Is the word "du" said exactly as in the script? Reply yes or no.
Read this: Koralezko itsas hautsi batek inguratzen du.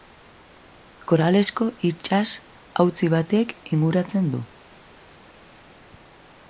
yes